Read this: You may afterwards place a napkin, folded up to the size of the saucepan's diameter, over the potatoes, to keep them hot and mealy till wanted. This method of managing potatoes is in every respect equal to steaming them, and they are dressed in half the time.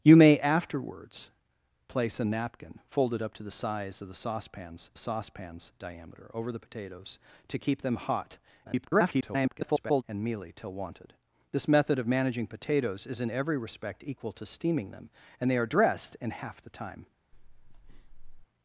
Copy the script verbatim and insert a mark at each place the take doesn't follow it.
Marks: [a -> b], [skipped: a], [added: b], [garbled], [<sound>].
You may afterwards place a napkin, folded up to the size of the saucepan's [added: saucepan's] diameter, over the potatoes, to keep them hot [garbled] and mealy till wanted. This method of managing potatoes is in every respect equal to steaming them, and they are dressed in half the time. [breath]